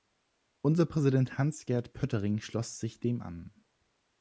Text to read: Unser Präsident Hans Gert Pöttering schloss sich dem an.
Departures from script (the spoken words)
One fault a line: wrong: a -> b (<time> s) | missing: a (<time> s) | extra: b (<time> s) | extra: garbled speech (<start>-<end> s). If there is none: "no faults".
no faults